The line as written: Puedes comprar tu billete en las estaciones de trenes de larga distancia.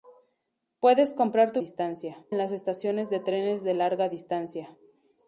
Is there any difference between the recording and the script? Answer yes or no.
yes